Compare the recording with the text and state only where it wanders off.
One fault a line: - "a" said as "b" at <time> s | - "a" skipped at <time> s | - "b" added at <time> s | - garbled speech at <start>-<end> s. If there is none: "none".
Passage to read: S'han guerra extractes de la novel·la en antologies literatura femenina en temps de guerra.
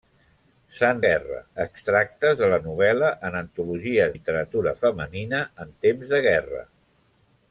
none